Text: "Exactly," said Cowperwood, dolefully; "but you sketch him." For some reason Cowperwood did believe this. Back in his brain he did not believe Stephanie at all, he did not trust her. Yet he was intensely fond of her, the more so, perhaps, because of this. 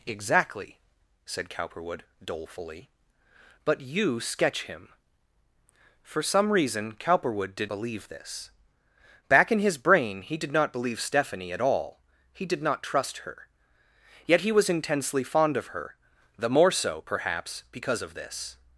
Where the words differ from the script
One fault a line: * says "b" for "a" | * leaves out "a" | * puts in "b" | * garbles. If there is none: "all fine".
all fine